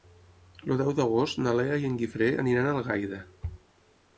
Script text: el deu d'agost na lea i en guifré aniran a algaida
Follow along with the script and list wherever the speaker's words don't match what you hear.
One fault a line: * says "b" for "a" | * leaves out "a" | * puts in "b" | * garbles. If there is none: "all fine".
all fine